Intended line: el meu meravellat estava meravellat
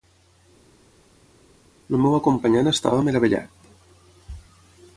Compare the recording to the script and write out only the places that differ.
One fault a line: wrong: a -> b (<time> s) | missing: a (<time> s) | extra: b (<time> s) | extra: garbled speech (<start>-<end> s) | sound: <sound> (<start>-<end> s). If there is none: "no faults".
wrong: meravellat -> acompanyant (2.2 s)